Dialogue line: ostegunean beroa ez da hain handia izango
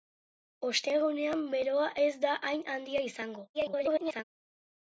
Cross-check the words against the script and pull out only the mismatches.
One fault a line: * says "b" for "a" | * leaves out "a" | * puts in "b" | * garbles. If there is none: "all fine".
* garbles